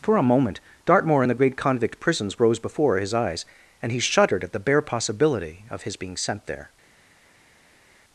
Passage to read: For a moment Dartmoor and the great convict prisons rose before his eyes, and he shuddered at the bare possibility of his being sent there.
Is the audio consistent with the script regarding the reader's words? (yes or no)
yes